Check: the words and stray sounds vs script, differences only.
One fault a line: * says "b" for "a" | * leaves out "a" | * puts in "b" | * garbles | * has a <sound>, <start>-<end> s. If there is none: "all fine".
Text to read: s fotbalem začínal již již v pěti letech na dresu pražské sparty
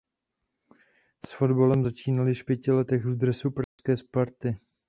* leaves out "již"
* says "v" for "na"
* has a dropout, 3.6-3.8 s